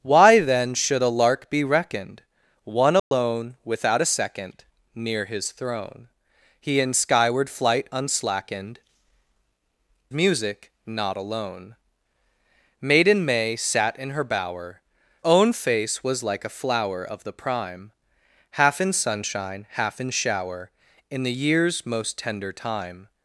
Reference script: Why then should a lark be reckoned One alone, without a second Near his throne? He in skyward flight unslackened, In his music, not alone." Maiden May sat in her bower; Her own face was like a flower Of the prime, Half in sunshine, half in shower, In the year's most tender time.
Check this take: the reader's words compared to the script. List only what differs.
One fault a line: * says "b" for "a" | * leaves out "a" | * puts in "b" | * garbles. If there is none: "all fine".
* leaves out "In his"
* leaves out "Her"